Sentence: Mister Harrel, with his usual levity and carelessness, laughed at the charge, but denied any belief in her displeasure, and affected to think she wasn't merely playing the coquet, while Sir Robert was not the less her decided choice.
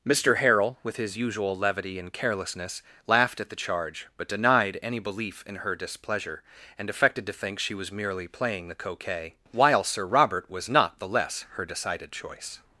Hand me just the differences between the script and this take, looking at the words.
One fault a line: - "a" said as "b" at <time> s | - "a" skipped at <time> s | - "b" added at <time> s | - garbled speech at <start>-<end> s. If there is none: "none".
- "wasn't" said as "was" at 7.8 s